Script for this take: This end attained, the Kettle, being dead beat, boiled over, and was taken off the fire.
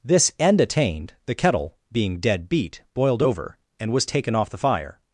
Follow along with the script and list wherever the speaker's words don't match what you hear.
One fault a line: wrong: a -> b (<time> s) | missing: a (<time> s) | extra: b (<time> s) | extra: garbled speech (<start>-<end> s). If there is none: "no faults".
no faults